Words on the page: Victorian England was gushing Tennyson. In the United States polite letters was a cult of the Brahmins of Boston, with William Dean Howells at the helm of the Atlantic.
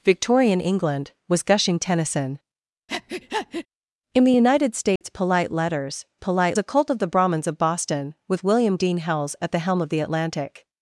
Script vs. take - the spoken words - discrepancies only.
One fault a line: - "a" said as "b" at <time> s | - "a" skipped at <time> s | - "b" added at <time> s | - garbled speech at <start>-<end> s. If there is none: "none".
- "was" said as "polite" at 6.2 s